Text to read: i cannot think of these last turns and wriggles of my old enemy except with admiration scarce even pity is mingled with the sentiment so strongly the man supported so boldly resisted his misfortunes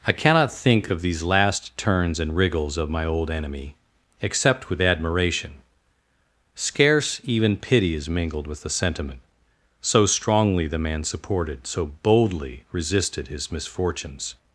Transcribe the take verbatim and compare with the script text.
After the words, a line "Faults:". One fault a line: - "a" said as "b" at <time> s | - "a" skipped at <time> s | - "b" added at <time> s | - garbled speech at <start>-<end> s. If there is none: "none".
i cannot think of these last turns and wriggles of my old enemy except with admiration scarce even pity is mingled with the sentiment so strongly the man supported so boldly resisted his misfortunes
Faults:
none